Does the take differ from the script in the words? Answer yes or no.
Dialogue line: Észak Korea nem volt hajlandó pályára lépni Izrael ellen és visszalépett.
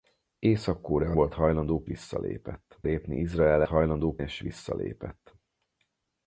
yes